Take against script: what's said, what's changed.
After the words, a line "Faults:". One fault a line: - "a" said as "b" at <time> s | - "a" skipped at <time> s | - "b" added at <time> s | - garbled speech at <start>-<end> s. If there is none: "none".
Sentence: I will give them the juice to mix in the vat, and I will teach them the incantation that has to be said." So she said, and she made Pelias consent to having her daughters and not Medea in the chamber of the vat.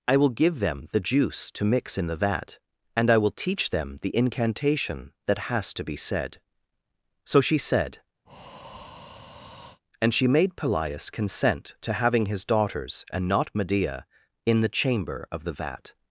I will give them the juice to mix in the vat, and I will teach them the incantation that has to be said." So she said, and she made Pelias consent to having his daughters and not Medea in the chamber of the vat.
Faults:
- "her" said as "his" at 12.3 s